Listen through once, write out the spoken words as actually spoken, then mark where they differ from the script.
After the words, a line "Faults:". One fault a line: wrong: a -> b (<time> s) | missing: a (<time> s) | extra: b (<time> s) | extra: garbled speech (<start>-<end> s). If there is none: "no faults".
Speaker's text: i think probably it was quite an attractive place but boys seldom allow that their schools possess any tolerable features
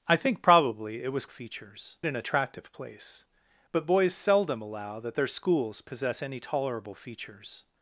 i think probably it was features an attractive place but boys seldom allow that their schools possess any tolerable features
Faults:
wrong: quite -> features (1.3 s)